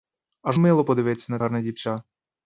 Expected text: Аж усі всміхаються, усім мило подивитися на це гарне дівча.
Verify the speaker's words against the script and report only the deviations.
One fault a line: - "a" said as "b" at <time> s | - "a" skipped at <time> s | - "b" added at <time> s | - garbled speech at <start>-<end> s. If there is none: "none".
- "усі всміхаються усім" skipped at 0.6 s
- "це" skipped at 1.4 s